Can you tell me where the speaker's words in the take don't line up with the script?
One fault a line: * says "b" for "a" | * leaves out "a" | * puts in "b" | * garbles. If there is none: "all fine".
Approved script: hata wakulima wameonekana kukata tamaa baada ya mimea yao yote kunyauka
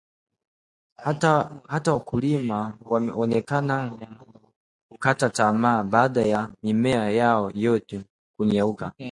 all fine